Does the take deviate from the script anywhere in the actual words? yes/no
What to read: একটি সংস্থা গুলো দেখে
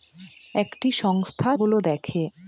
no